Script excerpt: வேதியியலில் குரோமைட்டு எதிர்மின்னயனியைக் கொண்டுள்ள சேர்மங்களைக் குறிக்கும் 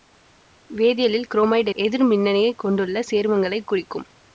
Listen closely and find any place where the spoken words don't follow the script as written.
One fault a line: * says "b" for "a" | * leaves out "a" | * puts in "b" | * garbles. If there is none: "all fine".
all fine